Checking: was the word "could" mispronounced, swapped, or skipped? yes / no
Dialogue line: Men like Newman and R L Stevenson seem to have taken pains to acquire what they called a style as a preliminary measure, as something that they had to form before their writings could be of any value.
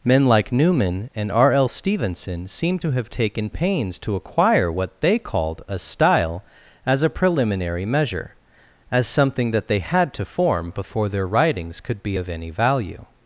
no